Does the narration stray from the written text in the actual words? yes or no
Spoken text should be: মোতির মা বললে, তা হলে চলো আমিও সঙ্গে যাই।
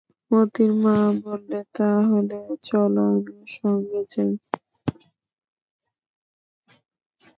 no